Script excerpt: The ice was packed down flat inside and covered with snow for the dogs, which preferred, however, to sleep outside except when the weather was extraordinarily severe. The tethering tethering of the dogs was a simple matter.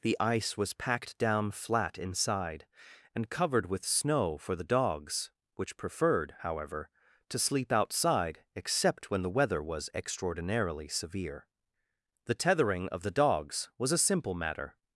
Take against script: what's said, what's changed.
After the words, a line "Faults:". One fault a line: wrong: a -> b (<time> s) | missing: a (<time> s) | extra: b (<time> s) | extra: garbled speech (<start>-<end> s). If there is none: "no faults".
The ice was packed down flat inside and covered with snow for the dogs, which preferred, however, to sleep outside except when the weather was extraordinarily severe. The tethering of the dogs was a simple matter.
Faults:
missing: tethering (12.9 s)